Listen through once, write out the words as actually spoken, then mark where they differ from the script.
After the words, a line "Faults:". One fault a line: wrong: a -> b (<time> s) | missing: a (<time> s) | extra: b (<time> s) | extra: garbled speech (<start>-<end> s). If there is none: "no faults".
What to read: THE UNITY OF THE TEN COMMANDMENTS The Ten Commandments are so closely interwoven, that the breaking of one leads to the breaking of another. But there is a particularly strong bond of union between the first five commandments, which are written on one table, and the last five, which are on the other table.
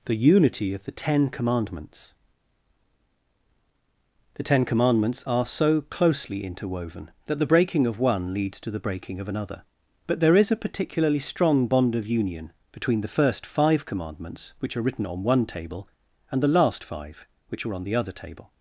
THE UNITY OF THE TEN COMMANDMENTS The Ten Commandments are so closely interwoven, that the breaking of one leads to the breaking of another. But there is a particularly strong bond of union between the first five commandments, which are written on one table, and the last five, which are on the other table.
Faults:
no faults